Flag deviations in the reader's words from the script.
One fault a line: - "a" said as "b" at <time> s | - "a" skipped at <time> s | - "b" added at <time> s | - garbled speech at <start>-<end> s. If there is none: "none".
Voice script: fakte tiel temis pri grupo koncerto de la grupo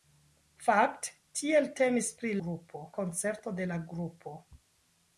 none